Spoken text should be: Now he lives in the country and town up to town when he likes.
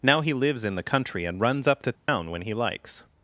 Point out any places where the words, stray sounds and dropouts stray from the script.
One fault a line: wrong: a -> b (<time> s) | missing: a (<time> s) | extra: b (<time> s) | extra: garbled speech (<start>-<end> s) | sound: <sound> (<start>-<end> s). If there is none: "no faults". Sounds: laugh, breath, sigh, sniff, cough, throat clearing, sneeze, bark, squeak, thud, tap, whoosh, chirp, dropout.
wrong: town -> runs (1.4 s)
sound: dropout (2.0-2.1 s)